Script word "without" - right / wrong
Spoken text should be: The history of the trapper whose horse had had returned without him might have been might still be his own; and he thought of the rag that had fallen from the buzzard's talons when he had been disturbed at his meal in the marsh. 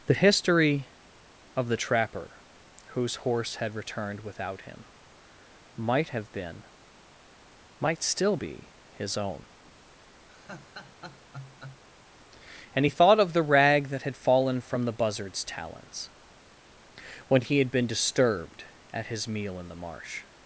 right